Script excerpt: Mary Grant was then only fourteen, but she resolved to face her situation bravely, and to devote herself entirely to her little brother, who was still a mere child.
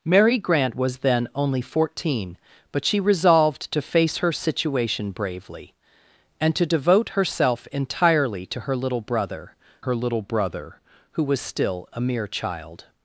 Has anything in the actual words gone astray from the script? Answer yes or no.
yes